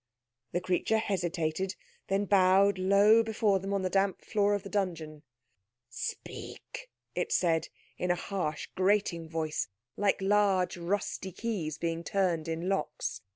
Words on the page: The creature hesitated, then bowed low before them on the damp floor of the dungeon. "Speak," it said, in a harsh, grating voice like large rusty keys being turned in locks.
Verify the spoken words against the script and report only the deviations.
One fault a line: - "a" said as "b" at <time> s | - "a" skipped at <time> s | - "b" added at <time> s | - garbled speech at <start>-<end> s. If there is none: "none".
none